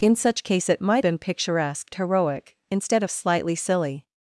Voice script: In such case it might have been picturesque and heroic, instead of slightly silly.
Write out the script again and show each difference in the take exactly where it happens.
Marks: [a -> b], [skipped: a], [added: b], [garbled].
In such case it might [skipped: have] been picturesque [skipped: and] heroic, instead of slightly silly.